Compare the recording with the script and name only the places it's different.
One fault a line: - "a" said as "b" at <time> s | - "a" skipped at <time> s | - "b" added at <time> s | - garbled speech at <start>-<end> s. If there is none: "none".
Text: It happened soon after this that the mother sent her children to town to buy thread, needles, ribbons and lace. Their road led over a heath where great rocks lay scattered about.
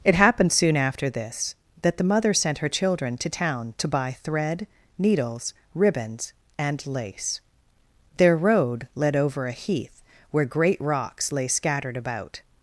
none